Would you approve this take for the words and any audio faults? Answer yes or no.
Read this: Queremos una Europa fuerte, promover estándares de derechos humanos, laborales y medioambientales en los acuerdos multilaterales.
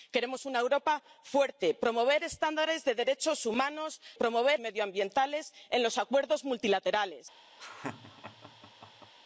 no